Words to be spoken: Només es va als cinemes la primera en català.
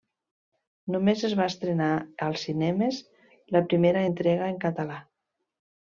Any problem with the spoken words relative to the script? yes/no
yes